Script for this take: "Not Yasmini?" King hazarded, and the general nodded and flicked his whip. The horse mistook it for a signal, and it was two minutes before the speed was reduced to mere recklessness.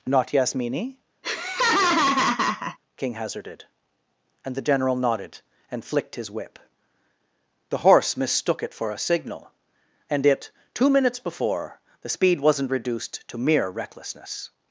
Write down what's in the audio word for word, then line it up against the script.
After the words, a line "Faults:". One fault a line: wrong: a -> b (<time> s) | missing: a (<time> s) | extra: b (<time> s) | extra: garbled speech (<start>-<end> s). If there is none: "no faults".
"Not Yasmini?" King hazarded, and the general nodded and flicked his whip. The horse mistook it for a signal, and it two minutes before the speed wasn't reduced to mere recklessness.
Faults:
missing: was (10.5 s)
wrong: was -> wasn't (12.4 s)